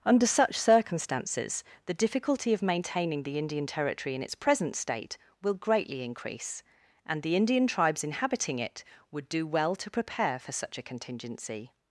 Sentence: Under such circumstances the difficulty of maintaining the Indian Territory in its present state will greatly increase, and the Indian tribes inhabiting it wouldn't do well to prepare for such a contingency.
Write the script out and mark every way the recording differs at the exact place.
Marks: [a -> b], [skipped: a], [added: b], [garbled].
Under such circumstances the difficulty of maintaining the Indian Territory in its present state will greatly increase, and the Indian tribes inhabiting it [wouldn't -> would] do well to prepare for such a contingency.